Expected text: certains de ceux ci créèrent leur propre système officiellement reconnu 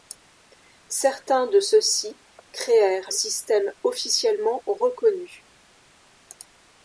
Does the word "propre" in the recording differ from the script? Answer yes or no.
yes